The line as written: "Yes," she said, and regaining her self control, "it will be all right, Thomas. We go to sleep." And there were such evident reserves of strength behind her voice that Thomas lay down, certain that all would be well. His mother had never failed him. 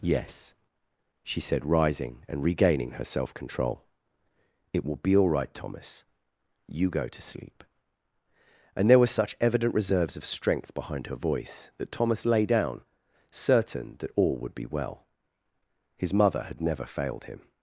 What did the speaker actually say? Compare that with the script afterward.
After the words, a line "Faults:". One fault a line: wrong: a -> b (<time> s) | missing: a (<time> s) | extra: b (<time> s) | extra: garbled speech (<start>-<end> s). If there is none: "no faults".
"Yes," she said, rising and regaining her self control, "it will be all right, Thomas. You go to sleep." And there were such evident reserves of strength behind her voice that Thomas lay down, certain that all would be well. His mother had never failed him.
Faults:
extra: rising (1.6 s)
wrong: We -> You (6.7 s)